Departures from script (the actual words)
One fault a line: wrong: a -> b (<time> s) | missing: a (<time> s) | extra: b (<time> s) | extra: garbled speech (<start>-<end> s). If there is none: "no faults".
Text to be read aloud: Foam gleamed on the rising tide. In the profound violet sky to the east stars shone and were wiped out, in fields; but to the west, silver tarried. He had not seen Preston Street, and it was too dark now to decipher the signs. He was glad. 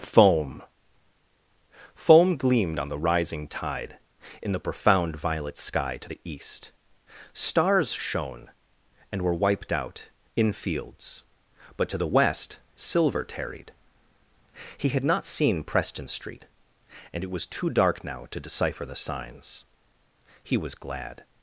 extra: foam (1.9 s)